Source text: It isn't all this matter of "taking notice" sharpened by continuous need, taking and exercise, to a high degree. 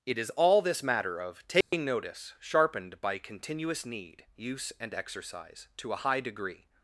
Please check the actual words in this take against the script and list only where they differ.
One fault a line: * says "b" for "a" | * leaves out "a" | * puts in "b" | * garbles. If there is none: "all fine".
* says "is" for "isn't"
* says "use" for "taking"